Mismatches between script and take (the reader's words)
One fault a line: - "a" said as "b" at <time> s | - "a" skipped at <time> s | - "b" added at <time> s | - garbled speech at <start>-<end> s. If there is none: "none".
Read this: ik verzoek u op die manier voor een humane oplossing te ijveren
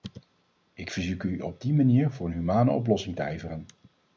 none